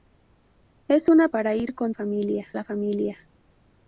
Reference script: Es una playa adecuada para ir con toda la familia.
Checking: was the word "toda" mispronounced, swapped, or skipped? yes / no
yes